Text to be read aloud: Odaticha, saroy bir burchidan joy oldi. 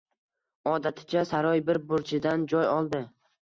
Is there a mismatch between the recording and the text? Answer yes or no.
no